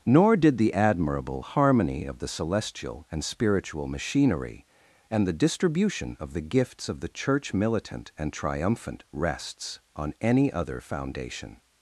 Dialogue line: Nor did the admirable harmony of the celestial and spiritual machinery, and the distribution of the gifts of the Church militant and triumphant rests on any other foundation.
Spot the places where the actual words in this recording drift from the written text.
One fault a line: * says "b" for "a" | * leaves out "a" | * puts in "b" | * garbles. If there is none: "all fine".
all fine